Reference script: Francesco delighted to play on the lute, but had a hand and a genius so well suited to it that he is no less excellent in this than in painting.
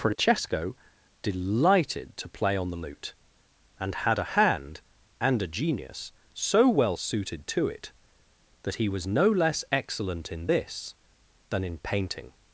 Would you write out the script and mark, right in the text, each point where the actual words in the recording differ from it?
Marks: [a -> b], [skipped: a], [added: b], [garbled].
Francesco delighted to play on the lute, [but -> and] had a hand and a genius so well suited to it that he [is -> was] no less excellent in this than in painting.